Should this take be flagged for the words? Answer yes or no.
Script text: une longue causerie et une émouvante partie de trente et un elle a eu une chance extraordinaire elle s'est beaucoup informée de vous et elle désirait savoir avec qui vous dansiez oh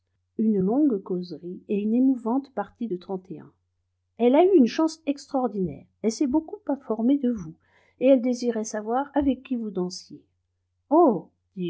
no